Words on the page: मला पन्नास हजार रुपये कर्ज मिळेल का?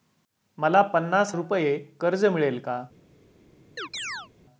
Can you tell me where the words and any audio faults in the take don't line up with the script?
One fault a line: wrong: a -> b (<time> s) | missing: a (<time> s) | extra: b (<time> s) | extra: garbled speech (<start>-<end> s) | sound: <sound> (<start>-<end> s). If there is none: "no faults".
missing: हजार (1.3 s)
sound: chirp (3.8-4.3 s)